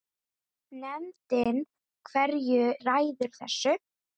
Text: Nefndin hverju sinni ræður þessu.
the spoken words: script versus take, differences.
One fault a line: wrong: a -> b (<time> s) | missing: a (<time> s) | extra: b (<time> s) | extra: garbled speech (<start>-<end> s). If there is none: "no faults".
missing: sinni (2.6 s)